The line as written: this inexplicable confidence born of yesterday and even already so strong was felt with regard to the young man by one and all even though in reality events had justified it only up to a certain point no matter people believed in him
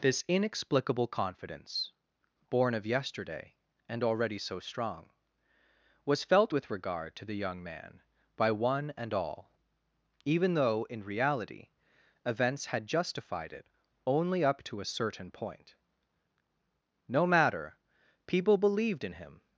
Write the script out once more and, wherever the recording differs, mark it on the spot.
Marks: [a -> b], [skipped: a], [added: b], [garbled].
this inexplicable confidence born of yesterday and [skipped: even] already so strong was felt with regard to the young man by one and all even though in reality events had justified it only up to a certain point no matter people believed in him